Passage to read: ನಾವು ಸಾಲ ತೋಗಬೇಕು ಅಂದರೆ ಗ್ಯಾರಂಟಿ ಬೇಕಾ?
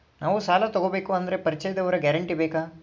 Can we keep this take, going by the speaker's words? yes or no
no